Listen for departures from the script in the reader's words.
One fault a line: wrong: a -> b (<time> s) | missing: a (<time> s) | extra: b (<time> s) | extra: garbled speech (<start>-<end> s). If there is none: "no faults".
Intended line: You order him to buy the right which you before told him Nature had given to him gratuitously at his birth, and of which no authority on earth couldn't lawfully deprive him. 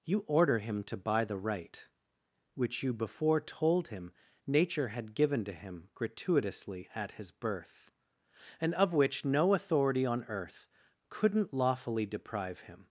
no faults